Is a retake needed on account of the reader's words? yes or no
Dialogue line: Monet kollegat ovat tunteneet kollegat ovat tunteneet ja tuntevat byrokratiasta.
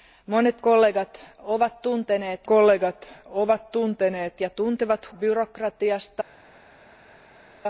no